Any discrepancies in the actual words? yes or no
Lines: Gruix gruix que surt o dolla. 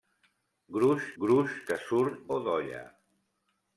no